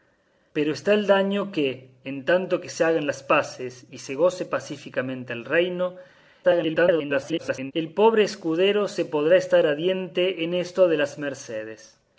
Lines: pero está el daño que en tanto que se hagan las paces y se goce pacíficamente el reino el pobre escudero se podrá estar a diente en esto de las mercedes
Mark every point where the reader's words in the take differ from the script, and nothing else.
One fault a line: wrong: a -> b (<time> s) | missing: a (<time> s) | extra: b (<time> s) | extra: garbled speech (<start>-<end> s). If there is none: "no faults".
extra: garbled speech (6.4-7.7 s)